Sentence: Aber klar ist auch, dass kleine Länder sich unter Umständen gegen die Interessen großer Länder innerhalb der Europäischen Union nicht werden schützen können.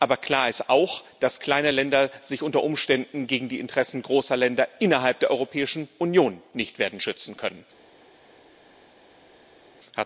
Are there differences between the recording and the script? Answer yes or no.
no